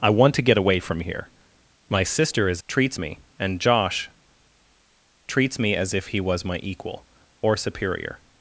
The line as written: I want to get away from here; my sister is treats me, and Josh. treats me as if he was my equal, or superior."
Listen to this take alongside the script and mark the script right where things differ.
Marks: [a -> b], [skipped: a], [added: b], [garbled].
I want to get away from here; my sister is treats me, and Josh. treats me as if he was my equal, or superior."